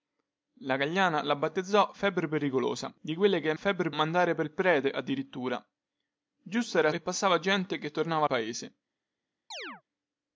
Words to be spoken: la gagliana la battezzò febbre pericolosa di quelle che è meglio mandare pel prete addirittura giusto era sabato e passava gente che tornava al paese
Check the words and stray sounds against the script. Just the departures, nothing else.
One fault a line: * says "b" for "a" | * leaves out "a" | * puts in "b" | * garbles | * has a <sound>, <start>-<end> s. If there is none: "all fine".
* says "febbre" for "meglio"
* leaves out "sabato"
* leaves out "al"
* has a chirp, 9.5-9.8 s